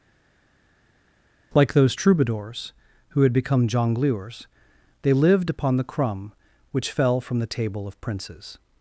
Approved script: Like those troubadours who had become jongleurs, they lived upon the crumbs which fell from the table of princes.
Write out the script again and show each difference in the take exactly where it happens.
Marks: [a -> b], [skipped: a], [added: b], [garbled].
Like those troubadours who had become jongleurs, they lived upon the [crumbs -> crumb] which fell from the table of princes.